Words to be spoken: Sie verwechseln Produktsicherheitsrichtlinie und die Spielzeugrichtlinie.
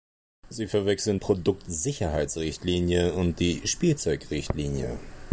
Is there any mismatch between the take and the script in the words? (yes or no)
no